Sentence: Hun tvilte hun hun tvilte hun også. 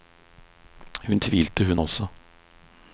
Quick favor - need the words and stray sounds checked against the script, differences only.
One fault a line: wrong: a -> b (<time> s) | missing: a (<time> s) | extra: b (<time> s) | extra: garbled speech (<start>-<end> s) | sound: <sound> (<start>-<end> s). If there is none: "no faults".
missing: hun tvilte hun (1.8 s)